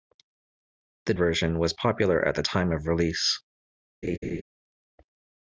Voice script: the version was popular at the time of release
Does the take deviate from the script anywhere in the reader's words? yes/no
no